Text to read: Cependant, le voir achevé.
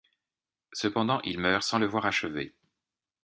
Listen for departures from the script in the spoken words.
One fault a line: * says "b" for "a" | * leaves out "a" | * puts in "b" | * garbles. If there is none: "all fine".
* puts in "il meurt sans"